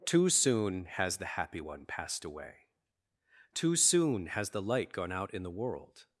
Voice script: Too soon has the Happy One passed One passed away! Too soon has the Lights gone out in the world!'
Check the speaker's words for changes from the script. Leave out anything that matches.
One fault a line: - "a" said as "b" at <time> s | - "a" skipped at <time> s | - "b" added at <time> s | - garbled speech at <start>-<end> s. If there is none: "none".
- "One passed" skipped at 2.2 s
- "Lights" said as "Light" at 4.6 s